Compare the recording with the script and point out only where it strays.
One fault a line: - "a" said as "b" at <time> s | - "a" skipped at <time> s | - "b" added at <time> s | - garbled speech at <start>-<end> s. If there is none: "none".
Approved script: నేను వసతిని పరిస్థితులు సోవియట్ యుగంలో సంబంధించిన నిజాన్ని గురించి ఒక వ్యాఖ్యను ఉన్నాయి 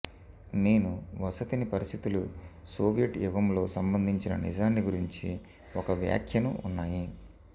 none